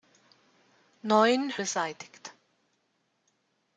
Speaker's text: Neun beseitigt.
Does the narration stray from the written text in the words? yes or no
no